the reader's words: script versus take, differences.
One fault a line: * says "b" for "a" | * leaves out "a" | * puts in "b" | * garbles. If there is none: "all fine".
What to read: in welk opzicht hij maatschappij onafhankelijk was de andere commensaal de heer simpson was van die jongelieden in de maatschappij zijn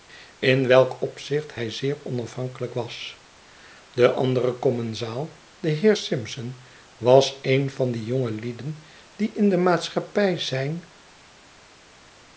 * says "zeer" for "maatschappij"
* puts in "een"
* puts in "die"